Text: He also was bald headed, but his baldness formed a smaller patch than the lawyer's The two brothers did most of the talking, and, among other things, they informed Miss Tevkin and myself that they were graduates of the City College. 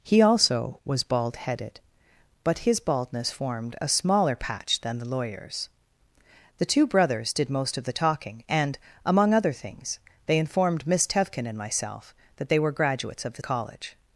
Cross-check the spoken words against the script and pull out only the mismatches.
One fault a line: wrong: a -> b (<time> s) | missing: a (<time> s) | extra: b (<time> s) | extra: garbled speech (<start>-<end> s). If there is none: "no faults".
missing: City (13.4 s)